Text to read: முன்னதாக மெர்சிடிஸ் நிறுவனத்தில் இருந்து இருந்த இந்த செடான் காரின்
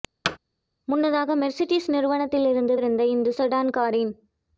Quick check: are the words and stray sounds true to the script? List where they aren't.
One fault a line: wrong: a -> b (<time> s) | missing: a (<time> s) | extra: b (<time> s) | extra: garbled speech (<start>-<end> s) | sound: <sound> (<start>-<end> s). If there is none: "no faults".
sound: thud (0.2-0.4 s)